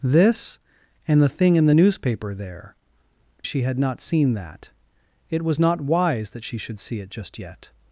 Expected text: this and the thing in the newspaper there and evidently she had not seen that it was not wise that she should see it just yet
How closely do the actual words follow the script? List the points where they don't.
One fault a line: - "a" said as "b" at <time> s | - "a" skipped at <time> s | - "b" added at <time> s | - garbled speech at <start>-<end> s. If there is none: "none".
- "and evidently" skipped at 2.7 s